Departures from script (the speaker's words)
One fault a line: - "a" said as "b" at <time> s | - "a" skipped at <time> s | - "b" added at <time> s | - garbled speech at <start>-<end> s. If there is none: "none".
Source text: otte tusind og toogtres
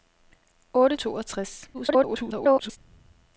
- "tusind" skipped at 1.0 s
- garbled speech at 1.7-2.8 s